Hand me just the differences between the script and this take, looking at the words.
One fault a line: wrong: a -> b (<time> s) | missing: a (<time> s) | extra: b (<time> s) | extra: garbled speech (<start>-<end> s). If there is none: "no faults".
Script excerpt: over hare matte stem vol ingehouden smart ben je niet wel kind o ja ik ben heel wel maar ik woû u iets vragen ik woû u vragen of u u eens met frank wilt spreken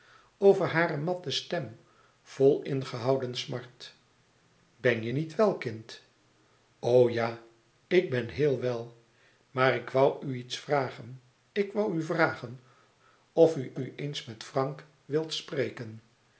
no faults